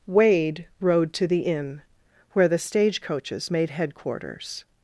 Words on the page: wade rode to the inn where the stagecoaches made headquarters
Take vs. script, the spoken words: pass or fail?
pass